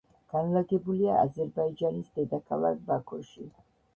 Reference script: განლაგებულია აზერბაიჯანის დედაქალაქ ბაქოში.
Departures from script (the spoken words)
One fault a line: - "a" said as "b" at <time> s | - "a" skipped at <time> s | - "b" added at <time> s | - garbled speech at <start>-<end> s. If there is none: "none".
none